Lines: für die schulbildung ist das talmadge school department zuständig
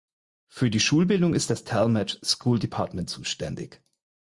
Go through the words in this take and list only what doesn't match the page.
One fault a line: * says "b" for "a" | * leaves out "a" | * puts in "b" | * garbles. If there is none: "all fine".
all fine